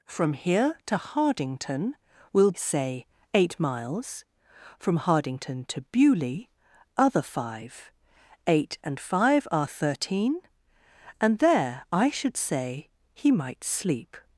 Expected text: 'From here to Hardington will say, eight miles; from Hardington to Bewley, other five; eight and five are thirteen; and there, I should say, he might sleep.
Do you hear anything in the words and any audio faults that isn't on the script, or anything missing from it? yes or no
no